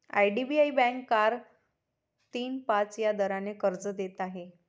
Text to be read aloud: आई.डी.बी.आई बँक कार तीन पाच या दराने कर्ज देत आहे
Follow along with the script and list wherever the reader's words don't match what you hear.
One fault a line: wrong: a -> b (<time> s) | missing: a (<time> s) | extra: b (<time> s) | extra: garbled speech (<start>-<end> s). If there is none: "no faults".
no faults